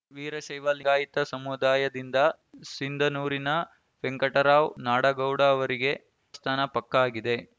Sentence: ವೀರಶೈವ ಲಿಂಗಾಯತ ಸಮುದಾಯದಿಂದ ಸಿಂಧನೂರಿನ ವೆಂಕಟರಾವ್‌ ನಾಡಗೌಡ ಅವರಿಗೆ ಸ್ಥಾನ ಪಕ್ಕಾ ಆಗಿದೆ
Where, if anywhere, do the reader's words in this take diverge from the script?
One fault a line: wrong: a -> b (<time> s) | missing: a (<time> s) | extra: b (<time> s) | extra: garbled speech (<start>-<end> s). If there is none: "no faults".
no faults